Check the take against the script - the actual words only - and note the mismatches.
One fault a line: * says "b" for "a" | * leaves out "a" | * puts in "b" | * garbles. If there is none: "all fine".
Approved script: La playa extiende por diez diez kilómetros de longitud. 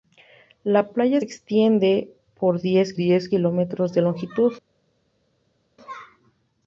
all fine